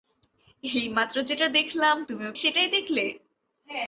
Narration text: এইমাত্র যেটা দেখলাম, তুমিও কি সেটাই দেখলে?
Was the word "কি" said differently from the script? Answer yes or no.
yes